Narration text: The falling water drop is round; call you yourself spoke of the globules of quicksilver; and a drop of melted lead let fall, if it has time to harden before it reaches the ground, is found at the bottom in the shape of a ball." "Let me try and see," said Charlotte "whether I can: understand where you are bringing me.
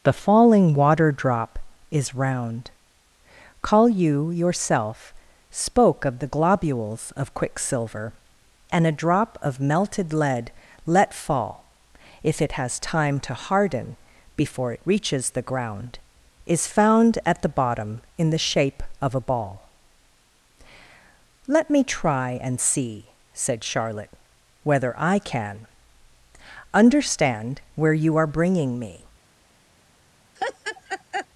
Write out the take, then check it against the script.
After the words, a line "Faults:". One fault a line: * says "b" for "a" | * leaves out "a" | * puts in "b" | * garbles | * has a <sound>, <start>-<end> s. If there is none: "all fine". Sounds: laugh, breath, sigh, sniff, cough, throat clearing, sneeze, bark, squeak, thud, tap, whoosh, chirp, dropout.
The falling water drop is round; call you yourself spoke of the globules of quicksilver; and a drop of melted lead let fall, if it has time to harden before it reaches the ground, is found at the bottom in the shape of a ball." "Let me try and see," said Charlotte "whether I can: understand where you are bringing me.
Faults:
* has a laugh, 30.4-31.3 s